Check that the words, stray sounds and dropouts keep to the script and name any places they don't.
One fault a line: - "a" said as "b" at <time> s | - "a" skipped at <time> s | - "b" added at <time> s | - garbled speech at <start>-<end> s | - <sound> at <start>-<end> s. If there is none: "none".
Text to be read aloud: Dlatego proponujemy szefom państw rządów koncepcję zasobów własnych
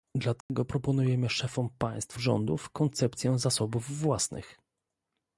- dropout at 0.4-0.5 s